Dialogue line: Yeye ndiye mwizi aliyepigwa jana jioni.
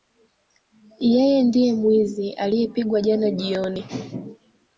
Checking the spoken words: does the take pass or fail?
pass